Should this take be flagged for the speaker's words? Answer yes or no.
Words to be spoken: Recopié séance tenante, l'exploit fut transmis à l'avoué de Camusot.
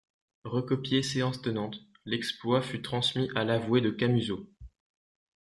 no